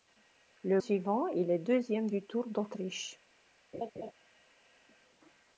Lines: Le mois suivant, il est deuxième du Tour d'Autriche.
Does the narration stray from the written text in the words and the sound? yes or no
yes